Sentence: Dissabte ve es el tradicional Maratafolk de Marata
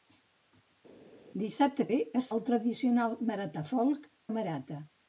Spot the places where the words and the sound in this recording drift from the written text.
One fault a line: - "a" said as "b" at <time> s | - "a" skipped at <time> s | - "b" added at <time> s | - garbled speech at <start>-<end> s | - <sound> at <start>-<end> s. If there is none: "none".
none